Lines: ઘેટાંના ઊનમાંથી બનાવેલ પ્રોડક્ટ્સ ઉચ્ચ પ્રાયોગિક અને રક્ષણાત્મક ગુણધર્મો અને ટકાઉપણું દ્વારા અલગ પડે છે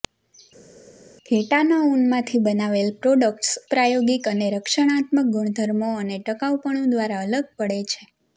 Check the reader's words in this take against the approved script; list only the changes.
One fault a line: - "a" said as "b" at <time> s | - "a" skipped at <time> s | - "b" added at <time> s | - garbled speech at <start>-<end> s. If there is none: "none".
- "ઉચ્ચ" skipped at 3.5 s